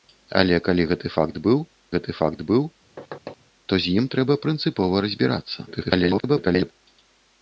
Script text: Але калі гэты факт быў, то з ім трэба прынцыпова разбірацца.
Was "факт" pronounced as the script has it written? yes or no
yes